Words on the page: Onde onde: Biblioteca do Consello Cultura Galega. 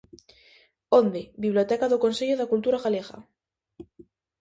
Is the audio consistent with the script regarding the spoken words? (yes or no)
no